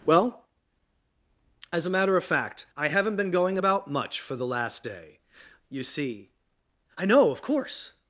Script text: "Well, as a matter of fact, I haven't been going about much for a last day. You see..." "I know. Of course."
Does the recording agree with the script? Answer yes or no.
no